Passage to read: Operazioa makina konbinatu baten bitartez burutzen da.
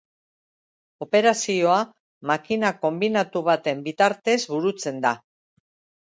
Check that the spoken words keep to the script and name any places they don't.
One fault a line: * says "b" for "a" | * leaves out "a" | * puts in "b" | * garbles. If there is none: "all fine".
all fine